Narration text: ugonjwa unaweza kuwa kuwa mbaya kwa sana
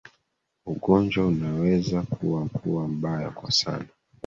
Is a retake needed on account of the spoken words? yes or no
no